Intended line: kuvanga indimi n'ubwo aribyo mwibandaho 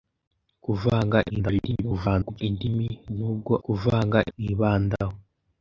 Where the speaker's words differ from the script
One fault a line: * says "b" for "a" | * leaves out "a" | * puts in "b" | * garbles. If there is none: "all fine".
* garbles
* says "kuvanga" for "aribyo"